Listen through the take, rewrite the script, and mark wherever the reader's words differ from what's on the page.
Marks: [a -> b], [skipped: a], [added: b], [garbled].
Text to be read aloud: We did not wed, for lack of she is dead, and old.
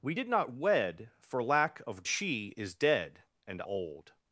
We did not wed, for lack of she is dead, and old.